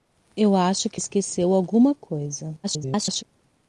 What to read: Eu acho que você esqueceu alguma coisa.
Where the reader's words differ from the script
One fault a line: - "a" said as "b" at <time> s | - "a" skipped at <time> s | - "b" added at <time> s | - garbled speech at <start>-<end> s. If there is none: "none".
- "você" skipped at 1.0 s
- garbled speech at 2.6-3.2 s